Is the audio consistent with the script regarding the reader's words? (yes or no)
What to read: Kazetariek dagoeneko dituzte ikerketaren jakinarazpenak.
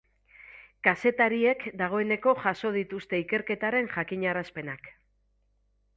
no